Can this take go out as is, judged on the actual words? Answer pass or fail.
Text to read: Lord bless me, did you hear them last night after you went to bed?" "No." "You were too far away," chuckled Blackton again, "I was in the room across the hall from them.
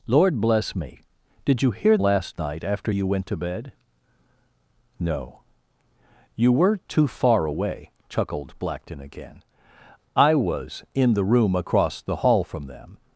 fail